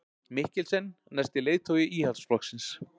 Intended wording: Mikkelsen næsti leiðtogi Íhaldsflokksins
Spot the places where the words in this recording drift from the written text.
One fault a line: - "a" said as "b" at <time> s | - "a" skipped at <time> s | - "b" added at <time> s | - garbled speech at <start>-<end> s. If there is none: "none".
none